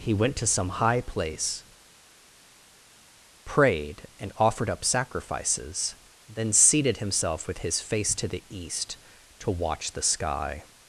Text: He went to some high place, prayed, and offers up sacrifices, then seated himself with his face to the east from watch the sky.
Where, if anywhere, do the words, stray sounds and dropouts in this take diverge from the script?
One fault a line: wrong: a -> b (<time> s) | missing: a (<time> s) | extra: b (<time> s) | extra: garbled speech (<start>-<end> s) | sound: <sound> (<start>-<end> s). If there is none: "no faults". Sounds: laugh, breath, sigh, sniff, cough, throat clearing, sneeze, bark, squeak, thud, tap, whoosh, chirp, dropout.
wrong: offers -> offered (4.4 s)
wrong: from -> to (9.4 s)